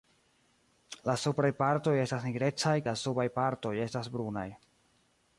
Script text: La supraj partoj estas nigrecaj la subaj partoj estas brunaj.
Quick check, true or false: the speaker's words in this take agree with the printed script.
true